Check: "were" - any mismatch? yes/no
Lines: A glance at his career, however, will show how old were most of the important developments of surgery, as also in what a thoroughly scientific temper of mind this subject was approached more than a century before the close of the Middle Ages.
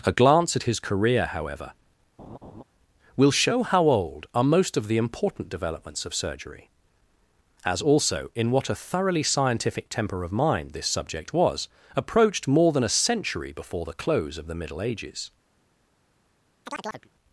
yes